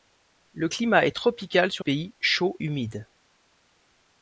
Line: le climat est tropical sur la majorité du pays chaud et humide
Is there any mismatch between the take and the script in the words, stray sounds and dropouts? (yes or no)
yes